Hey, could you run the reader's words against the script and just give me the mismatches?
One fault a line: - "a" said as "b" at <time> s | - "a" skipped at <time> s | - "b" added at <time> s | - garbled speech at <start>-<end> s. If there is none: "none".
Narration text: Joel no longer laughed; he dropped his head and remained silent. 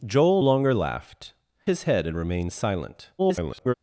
- "no" skipped at 0.4 s
- "he dropped" skipped at 1.3 s
- garbled speech at 3.2-3.7 s